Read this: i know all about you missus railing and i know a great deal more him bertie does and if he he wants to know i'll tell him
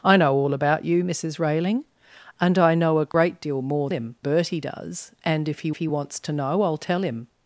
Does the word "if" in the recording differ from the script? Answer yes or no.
no